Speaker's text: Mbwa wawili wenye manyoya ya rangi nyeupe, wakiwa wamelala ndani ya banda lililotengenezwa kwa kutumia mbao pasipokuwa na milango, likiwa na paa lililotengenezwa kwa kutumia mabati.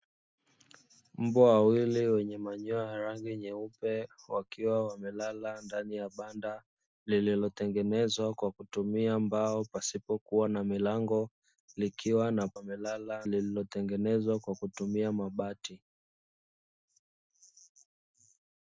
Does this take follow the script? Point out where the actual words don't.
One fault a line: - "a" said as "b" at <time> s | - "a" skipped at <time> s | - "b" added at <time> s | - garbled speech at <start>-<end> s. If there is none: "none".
- "paa" said as "wamelala" at 12.5 s